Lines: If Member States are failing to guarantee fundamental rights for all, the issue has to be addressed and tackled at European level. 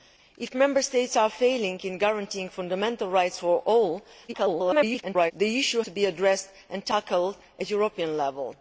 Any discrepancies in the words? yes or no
yes